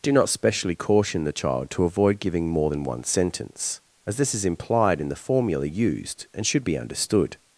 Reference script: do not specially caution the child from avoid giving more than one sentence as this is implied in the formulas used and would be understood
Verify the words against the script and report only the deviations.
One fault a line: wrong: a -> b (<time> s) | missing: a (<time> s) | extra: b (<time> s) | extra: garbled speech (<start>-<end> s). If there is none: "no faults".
wrong: from -> to (1.7 s)
wrong: formulas -> formula (5.2 s)
wrong: would -> should (6.5 s)